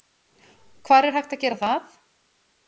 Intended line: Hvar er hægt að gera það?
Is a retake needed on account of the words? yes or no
no